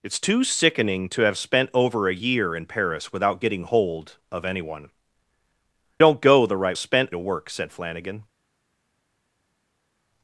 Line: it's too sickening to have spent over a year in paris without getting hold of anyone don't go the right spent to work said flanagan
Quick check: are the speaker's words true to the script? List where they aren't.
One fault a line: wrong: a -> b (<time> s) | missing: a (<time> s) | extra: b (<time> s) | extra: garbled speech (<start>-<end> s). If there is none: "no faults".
no faults